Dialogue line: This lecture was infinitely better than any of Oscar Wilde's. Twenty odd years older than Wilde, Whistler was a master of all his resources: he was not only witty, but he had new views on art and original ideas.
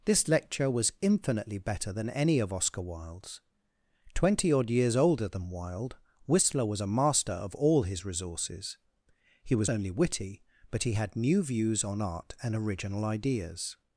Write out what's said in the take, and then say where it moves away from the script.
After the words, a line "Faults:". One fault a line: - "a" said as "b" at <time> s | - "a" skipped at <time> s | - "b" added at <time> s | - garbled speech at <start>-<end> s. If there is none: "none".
This lecture was infinitely better than any of Oscar Wilde's. Twenty odd years older than Wilde, Whistler was a master of all his resources: he was only witty, but he had new views on art and original ideas.
Faults:
- "not" skipped at 9.7 s